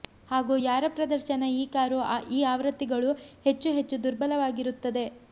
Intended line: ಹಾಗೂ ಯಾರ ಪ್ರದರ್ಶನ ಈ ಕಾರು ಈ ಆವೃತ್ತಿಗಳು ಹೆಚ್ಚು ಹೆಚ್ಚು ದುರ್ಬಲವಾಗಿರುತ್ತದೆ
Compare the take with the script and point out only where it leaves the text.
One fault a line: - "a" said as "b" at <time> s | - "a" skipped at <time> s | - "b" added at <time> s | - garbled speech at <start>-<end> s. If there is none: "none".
none